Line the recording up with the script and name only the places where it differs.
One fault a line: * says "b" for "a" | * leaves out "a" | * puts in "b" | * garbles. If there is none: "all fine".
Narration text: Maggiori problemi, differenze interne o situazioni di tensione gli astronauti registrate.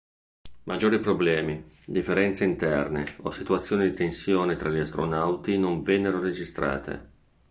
* puts in "tra"
* puts in "non vennero"